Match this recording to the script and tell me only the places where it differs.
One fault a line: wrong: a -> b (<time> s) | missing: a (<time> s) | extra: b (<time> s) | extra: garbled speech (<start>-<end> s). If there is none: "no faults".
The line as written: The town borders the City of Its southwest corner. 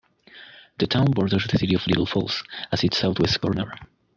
extra: Little Falls at (1.9 s)